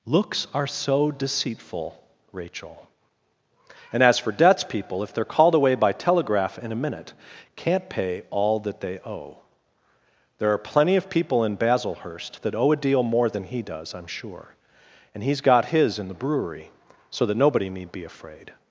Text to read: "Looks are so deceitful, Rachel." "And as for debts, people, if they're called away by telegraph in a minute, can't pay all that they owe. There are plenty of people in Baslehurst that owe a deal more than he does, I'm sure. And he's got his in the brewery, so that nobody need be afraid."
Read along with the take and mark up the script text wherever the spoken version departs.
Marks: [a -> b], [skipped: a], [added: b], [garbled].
"Looks are so deceitful, Rachel." "And as for debts, people, if they're called away by telegraph in a minute, can't pay all that they owe. There are plenty of people in Baslehurst that owe a deal more than he does, I'm sure. And he's got his in the brewery, so that nobody need be afraid."